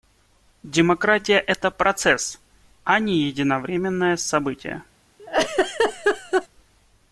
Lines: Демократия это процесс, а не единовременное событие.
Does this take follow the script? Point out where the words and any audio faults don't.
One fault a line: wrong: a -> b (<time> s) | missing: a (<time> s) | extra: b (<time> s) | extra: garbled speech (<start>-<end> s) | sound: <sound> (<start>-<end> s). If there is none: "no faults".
sound: laugh (5.2-6.5 s)